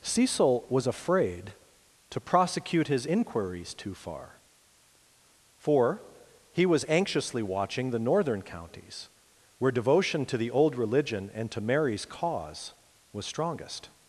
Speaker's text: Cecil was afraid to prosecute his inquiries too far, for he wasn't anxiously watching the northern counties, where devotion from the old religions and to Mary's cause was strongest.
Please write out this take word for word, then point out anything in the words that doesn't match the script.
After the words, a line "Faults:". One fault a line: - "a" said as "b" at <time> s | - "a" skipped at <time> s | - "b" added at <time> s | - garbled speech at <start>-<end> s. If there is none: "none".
Cecil was afraid to prosecute his inquiries too far, for he was anxiously watching the northern counties, where devotion to the old religion and to Mary's cause was strongest.
Faults:
- "wasn't" said as "was" at 6.7 s
- "from" said as "to" at 10.3 s
- "religions" said as "religion" at 10.8 s